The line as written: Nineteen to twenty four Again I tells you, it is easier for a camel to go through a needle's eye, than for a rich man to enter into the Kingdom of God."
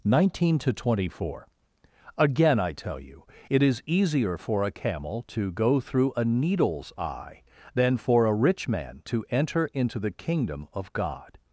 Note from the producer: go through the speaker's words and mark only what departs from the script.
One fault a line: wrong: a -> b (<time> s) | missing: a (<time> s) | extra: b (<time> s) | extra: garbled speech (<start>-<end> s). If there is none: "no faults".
wrong: tells -> tell (2.7 s)